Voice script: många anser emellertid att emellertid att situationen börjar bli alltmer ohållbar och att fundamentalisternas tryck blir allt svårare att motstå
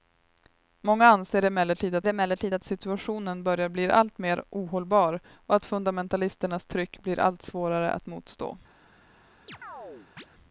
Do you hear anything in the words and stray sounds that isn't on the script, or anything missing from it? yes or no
yes